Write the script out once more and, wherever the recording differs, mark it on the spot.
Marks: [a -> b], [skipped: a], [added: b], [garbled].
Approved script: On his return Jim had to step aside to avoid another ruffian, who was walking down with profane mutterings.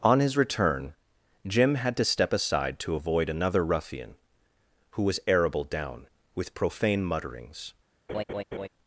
On his return Jim had to step aside to avoid another ruffian, who was [walking -> arable] down with profane mutterings.